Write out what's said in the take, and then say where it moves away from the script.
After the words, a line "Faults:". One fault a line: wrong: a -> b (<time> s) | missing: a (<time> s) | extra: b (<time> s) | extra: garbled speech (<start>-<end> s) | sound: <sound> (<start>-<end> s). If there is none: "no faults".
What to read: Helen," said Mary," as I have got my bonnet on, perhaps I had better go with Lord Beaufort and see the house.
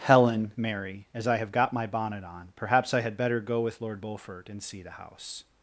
Helen," Mary," as I have got my bonnet on, perhaps I had better go with Lord Beaufort and see the house.
Faults:
missing: said (0.5 s)